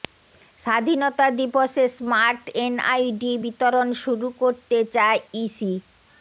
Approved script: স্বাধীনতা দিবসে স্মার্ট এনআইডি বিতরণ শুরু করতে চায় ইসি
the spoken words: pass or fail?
pass